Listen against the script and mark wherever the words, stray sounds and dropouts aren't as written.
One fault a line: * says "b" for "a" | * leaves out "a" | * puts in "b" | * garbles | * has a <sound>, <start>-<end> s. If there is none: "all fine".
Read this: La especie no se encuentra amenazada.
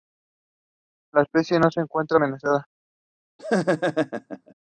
* has a laugh, 3.4-4.5 s